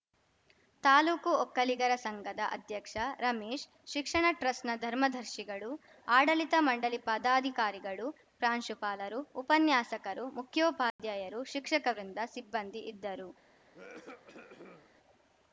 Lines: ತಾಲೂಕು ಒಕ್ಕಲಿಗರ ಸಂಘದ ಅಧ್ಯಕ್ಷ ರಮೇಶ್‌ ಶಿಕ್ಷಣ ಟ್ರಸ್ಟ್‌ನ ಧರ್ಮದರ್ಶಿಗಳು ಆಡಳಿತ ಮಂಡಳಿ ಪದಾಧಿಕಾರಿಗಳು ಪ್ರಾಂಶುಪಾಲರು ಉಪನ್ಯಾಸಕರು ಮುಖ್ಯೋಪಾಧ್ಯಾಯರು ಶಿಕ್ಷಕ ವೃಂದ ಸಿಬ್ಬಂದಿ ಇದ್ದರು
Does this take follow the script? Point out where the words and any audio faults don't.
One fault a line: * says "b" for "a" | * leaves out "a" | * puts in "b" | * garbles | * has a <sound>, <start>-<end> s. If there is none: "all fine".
* has a dropout, 10.9-11.0 s
* has a cough, 13.7-14.9 s